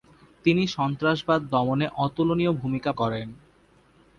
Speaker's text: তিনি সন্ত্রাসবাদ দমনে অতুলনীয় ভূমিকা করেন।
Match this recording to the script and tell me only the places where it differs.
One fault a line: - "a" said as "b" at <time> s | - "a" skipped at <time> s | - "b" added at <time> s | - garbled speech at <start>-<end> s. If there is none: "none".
none